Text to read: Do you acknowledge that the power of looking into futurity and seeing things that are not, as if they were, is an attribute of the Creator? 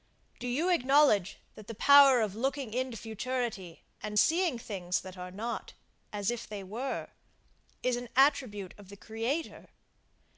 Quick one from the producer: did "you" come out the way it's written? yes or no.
yes